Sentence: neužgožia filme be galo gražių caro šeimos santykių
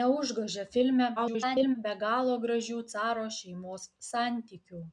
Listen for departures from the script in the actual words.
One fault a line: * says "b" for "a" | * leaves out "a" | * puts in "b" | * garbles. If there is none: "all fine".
* garbles